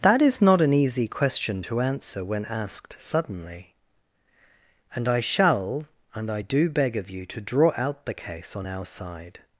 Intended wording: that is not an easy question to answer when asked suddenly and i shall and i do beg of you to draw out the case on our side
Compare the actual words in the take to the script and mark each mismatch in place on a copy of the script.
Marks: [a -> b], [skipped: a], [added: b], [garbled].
that is not an easy question to answer when asked suddenly and i shall and i do beg of you to draw out the case on our side